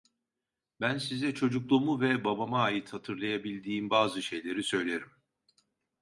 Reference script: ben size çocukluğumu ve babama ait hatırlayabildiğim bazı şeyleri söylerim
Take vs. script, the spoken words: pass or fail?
pass